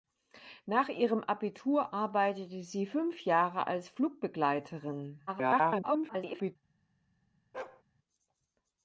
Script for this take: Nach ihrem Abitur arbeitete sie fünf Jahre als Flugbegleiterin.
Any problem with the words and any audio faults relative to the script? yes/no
yes